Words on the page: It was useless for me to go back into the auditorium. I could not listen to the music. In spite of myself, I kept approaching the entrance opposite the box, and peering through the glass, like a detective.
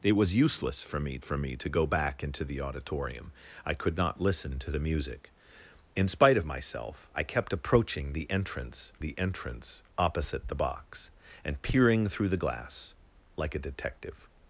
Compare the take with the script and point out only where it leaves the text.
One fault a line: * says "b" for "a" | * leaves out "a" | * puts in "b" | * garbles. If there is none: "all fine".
* puts in "for me"
* puts in "the entrance"